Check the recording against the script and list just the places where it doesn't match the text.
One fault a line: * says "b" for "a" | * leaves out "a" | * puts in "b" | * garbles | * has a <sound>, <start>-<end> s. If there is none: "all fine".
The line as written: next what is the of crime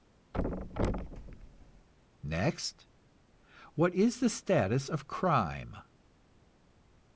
* has a thud, 0.3-1.9 s
* puts in "status"